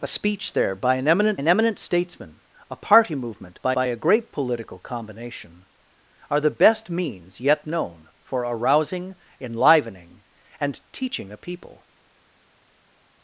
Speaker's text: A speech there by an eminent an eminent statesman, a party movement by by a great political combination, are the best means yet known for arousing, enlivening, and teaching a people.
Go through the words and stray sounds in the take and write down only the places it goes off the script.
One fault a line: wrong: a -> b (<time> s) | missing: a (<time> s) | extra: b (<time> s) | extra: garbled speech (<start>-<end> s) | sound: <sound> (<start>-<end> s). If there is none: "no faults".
no faults